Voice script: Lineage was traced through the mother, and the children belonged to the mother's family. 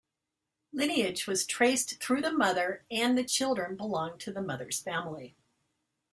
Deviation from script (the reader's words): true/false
false